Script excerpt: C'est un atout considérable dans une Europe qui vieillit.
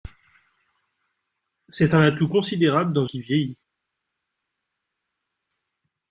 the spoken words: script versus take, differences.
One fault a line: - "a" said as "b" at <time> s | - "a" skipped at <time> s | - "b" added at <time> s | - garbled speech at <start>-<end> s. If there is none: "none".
- "une Europe" skipped at 3.0 s